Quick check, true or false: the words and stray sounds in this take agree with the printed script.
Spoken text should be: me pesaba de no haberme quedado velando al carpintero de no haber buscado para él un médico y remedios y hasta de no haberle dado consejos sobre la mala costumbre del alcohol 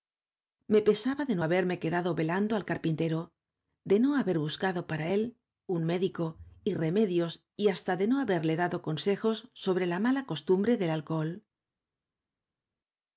true